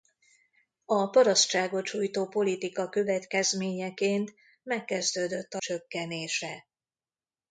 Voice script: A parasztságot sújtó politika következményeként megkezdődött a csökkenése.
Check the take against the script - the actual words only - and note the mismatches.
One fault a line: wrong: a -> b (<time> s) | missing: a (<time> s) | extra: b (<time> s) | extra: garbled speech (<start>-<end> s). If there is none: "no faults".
no faults